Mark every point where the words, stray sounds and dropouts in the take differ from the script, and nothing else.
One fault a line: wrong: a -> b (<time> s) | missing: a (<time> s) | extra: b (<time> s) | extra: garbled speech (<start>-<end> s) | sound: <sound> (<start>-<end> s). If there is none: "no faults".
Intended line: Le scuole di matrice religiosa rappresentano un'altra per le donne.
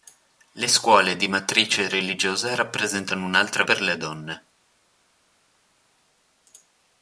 no faults